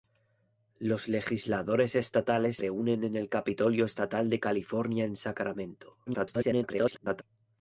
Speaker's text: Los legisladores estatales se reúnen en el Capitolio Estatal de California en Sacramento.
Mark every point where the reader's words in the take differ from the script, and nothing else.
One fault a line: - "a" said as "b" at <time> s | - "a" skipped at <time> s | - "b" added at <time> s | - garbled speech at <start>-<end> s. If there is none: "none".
- "se" skipped at 2.6 s
- garbled speech at 6.1-7.2 s